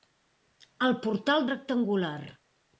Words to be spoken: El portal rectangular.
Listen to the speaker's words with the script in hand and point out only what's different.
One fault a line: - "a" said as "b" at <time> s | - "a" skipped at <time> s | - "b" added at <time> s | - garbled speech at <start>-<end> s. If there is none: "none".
none